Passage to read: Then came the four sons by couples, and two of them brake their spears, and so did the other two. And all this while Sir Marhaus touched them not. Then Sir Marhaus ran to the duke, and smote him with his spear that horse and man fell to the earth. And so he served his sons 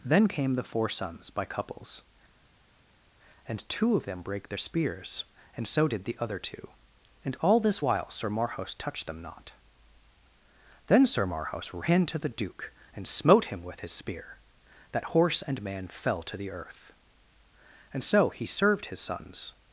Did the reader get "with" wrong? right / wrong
right